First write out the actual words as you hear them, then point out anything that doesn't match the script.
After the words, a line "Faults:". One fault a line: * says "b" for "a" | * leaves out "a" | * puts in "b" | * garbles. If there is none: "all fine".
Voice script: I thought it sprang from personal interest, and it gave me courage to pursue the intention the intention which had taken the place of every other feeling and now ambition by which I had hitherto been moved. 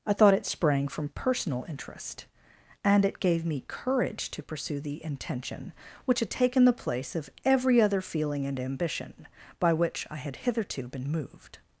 I thought it sprang from personal interest, and it gave me courage to pursue the intention which had taken the place of every other feeling and ambition by which I had hitherto been moved.
Faults:
* leaves out "the intention"
* leaves out "now"